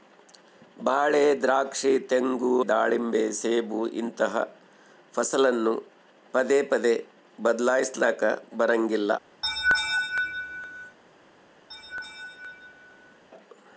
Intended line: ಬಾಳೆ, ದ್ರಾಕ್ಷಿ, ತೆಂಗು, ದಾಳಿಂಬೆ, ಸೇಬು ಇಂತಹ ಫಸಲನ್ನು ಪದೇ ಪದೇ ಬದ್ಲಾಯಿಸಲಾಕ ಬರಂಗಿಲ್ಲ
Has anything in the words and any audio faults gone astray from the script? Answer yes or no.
yes